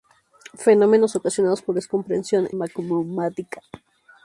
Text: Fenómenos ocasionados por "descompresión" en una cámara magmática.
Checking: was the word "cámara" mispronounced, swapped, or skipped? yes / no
yes